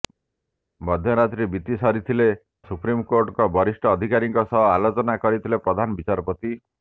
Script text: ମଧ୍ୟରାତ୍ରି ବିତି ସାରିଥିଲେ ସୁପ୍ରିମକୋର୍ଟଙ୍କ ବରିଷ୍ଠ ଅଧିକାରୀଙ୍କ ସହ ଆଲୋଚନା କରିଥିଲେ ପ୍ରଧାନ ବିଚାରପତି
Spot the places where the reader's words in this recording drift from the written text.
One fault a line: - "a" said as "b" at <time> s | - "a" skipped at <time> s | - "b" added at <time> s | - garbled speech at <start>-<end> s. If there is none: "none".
none